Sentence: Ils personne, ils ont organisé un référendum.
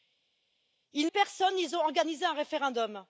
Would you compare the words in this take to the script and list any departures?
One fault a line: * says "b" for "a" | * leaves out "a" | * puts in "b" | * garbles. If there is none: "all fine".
all fine